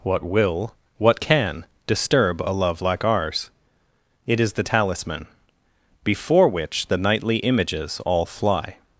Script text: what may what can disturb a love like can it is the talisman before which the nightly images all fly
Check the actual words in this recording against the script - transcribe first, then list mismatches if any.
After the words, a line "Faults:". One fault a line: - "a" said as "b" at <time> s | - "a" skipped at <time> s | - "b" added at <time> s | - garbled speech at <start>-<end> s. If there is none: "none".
what will what can disturb a love like ours it is the talisman before which the nightly images all fly
Faults:
- "may" said as "will" at 0.2 s
- "can" said as "ours" at 3.0 s